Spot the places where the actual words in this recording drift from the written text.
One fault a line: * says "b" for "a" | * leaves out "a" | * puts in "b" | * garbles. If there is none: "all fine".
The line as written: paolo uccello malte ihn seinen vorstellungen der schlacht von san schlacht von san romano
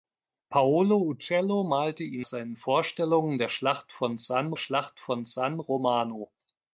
all fine